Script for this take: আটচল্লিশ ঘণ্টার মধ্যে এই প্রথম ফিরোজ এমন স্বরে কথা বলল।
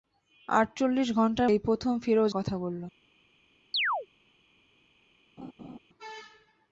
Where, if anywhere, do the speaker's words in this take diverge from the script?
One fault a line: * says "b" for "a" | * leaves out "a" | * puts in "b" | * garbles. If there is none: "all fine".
* leaves out "মধ্যে"
* leaves out "এমন স্বরে"